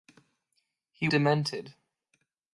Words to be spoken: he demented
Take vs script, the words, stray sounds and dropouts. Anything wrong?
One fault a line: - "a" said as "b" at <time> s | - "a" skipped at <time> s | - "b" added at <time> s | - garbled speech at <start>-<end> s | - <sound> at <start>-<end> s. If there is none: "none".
none